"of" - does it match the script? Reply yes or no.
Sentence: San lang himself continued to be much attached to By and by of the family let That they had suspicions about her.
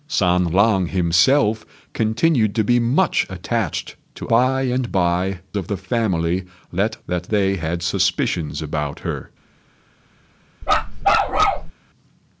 yes